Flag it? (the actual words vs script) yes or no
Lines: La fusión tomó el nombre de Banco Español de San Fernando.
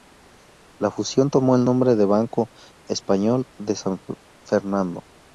no